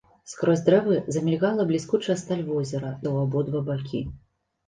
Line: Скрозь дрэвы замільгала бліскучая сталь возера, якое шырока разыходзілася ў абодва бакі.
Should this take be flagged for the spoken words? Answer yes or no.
yes